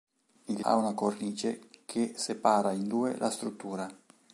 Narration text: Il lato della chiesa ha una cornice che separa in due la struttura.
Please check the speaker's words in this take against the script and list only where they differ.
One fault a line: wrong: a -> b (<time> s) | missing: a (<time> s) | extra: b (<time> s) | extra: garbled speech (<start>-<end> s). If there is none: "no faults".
missing: lato della chiesa (0.7 s)